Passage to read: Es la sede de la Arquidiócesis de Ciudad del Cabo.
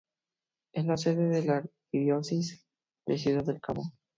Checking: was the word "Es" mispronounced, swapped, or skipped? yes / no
no